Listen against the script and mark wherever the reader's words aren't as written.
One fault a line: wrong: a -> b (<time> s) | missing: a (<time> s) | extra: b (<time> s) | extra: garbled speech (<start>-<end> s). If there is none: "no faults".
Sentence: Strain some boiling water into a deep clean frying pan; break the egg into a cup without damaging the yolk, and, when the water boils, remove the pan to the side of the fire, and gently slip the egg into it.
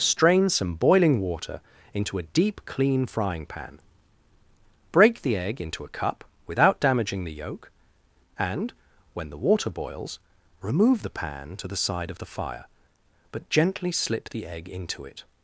wrong: and -> but (13.3 s)